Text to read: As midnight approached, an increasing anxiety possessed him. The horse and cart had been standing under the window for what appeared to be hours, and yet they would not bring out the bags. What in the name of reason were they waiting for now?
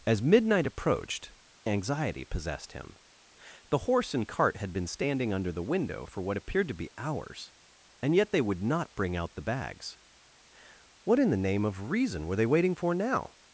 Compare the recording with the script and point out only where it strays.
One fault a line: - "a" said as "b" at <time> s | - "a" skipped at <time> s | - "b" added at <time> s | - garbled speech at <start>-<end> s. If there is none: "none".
- "an increasing" skipped at 1.3 s